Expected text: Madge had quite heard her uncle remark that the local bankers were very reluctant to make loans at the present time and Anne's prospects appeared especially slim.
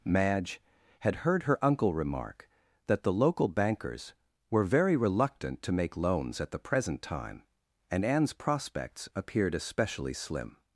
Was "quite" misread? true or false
true